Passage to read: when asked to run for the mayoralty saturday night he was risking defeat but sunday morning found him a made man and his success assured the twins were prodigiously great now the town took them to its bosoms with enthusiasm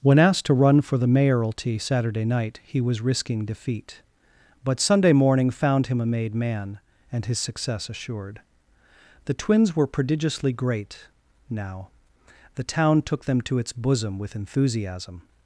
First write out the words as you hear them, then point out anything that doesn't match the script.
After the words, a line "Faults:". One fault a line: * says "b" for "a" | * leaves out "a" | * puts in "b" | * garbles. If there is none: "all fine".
when asked to run for the mayoralty saturday night he was risking defeat but sunday morning found him a made man and his success assured the twins were prodigiously great now the town took them to its bosom with enthusiasm
Faults:
* says "bosom" for "bosoms"